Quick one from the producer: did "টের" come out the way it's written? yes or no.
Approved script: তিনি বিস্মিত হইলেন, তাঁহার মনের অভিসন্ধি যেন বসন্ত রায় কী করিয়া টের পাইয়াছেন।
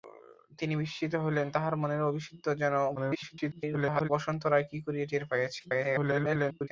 yes